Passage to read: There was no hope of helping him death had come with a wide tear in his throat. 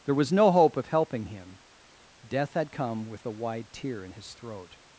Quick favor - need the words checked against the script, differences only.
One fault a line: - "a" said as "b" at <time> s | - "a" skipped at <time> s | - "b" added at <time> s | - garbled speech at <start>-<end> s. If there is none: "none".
none